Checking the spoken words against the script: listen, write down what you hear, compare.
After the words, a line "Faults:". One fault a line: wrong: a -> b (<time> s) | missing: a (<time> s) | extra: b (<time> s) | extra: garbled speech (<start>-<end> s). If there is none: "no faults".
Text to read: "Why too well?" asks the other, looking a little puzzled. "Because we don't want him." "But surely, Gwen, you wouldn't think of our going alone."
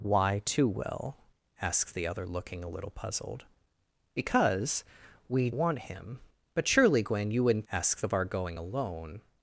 "Why too well?" asks the other, looking a little puzzled. "Because we want him." "But surely, Gwen, you wouldn't asks of our going alone."
Faults:
missing: don't (5.5 s)
wrong: think -> asks (7.7 s)